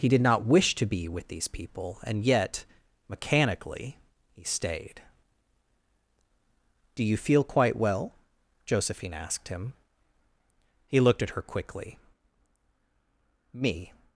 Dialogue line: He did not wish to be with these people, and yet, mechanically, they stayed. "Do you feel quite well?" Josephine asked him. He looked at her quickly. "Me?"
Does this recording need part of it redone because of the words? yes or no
yes